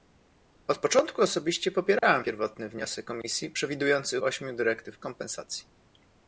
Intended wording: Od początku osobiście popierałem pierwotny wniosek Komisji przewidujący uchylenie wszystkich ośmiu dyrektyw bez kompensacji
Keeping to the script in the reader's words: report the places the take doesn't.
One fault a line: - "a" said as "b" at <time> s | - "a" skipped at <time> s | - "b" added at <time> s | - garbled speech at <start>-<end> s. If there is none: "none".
- "uchylenie wszystkich" skipped at 4.2 s
- "bez" skipped at 5.0 s